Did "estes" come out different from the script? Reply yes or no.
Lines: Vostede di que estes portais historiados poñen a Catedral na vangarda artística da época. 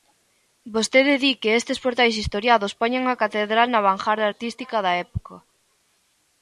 no